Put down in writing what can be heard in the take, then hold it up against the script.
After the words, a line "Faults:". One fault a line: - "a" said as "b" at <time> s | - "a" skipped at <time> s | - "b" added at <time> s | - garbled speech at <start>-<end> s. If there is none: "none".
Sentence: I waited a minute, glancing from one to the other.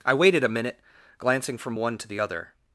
I waited a minute, glancing from one to the other.
Faults:
none